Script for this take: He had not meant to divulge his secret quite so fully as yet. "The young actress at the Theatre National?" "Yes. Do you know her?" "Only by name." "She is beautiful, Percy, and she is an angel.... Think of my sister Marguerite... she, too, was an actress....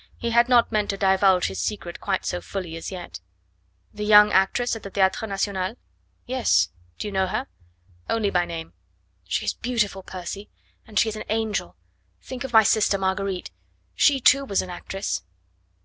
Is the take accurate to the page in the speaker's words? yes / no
yes